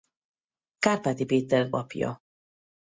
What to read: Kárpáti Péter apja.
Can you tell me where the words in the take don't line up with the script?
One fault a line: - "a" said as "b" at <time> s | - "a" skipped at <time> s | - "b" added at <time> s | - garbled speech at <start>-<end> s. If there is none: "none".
none